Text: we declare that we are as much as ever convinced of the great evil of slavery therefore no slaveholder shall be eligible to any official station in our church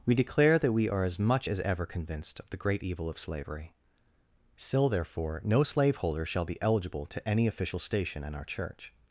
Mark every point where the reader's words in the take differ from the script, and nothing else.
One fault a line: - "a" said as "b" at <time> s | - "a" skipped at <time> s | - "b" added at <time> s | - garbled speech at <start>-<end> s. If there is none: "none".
- "still" added at 4.6 s